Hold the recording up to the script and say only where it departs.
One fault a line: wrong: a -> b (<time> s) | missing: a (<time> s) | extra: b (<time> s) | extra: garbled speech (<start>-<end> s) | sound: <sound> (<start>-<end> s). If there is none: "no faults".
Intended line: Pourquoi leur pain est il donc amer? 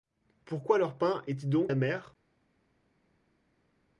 no faults